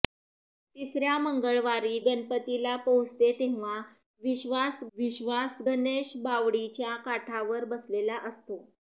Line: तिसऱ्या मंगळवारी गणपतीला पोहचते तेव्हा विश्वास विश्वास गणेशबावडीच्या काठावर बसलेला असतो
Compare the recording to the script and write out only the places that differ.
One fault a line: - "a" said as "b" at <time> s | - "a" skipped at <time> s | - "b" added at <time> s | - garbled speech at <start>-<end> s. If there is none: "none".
none